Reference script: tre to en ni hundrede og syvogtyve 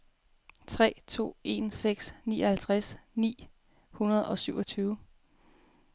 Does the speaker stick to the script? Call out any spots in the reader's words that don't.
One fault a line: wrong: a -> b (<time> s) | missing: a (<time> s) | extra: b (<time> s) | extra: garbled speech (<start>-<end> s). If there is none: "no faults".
extra: seks nioghalvtreds (1.7 s)